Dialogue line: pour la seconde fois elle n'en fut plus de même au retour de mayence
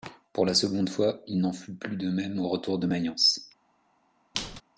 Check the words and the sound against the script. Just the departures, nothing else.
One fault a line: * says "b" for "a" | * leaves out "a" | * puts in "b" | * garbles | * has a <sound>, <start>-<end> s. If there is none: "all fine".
* says "il" for "elle"
* has a squeak, 4.3-4.6 s